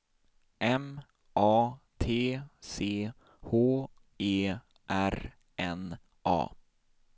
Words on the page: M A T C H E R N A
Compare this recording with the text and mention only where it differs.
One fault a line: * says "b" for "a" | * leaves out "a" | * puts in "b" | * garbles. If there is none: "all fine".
all fine